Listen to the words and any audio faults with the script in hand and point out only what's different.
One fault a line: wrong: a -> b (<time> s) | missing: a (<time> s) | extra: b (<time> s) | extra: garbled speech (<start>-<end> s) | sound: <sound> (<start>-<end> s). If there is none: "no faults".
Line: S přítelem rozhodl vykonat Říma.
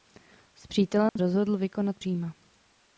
sound: dropout (1.1-1.2 s)